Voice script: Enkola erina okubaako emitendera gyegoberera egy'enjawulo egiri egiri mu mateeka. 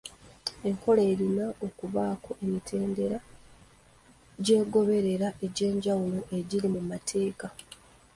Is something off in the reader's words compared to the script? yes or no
yes